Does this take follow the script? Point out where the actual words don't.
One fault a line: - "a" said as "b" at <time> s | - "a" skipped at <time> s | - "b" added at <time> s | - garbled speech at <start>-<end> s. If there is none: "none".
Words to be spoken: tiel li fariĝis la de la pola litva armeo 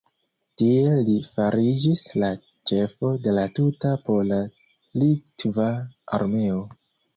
- "ĉefo" added at 2.7 s
- "tuta" added at 3.6 s